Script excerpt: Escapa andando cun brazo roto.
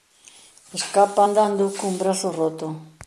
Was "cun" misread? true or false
false